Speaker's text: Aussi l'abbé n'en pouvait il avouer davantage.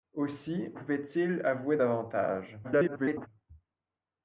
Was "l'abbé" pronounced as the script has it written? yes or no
no